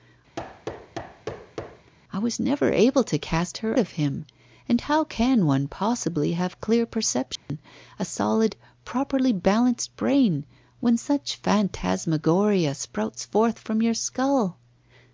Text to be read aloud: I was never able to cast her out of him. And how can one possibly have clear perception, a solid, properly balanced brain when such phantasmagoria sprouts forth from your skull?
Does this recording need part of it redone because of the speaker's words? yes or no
yes